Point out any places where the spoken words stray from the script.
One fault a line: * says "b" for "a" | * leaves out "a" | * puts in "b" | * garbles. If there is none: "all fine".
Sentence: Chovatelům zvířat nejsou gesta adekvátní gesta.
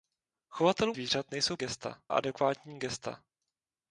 all fine